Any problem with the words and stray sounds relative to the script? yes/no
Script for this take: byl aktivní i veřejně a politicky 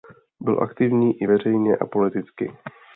no